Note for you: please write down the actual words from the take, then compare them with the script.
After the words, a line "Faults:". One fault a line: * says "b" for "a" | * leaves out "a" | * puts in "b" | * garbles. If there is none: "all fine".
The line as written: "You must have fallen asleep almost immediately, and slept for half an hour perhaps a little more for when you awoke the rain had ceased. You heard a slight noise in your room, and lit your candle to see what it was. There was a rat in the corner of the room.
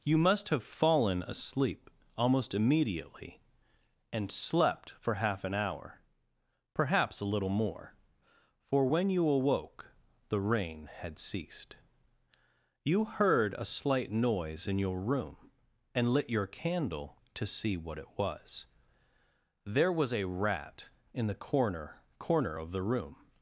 "You must have fallen asleep almost immediately, and slept for half an hour perhaps a little more for when you awoke the rain had ceased. You heard a slight noise in your room, and lit your candle to see what it was. There was a rat in the corner corner of the room.
Faults:
* puts in "corner"